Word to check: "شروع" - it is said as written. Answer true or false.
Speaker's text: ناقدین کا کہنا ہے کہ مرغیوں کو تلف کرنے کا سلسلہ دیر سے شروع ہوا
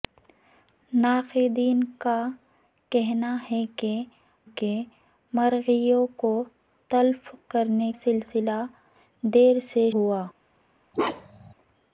false